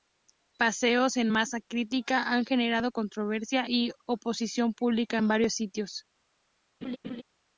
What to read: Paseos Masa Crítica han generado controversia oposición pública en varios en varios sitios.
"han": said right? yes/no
yes